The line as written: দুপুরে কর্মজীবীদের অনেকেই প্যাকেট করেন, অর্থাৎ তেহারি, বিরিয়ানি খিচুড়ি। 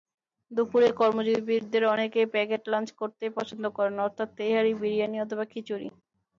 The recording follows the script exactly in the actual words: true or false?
false